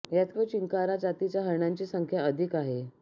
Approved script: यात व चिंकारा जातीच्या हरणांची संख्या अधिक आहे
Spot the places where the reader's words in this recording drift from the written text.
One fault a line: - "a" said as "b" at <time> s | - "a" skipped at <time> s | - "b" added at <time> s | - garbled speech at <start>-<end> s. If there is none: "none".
none